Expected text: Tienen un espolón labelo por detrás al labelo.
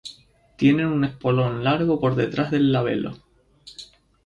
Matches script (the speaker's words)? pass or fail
fail